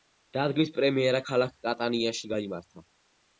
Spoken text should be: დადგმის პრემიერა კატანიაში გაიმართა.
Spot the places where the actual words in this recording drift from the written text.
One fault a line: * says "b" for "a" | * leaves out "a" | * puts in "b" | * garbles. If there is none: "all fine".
* puts in "ქალაქ"